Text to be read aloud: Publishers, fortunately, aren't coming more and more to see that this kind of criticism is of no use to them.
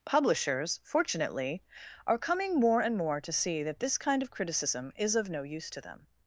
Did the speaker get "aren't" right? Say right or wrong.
wrong